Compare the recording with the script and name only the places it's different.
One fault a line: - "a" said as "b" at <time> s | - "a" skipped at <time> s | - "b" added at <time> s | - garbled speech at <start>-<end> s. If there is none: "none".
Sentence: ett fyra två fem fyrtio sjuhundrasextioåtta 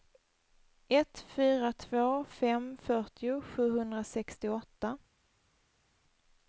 none